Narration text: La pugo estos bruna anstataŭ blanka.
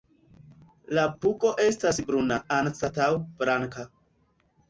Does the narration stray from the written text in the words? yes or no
yes